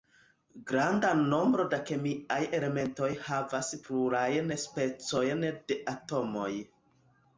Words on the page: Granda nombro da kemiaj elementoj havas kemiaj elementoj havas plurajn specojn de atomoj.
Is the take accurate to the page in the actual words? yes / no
no